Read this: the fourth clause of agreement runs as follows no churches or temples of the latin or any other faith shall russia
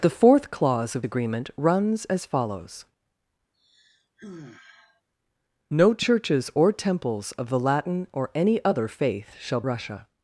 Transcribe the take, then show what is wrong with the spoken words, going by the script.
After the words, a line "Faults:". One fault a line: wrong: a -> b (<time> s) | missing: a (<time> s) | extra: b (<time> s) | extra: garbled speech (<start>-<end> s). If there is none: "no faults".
the fourth clause of agreement runs as follows no churches or temples of the latin or any other faith shall russia
Faults:
no faults